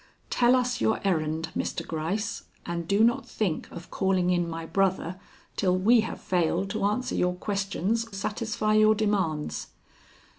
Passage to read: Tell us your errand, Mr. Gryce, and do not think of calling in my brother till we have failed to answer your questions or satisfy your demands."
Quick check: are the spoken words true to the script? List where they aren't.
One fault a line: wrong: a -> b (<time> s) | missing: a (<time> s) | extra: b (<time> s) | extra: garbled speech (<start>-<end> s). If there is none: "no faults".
missing: or (8.1 s)